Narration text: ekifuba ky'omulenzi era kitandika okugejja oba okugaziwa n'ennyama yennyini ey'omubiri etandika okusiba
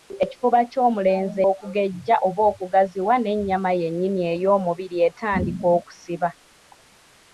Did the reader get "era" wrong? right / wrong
wrong